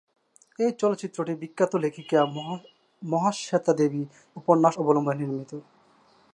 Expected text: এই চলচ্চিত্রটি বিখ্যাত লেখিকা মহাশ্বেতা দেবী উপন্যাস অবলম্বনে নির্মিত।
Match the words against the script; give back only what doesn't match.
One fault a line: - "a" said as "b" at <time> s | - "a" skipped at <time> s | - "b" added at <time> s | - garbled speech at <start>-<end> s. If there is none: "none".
none